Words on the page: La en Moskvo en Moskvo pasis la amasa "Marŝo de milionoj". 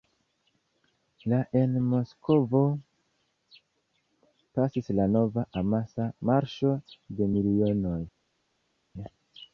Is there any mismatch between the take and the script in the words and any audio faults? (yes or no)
yes